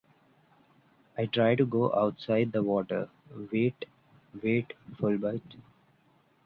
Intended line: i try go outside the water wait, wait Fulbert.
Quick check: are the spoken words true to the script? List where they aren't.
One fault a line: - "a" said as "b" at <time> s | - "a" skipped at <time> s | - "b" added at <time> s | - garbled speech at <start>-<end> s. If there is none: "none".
- "to" added at 1.5 s